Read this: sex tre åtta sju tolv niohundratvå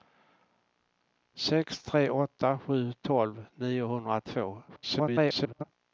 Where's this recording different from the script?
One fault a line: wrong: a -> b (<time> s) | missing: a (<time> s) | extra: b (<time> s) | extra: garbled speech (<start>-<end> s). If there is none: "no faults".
extra: garbled speech (4.7-5.6 s)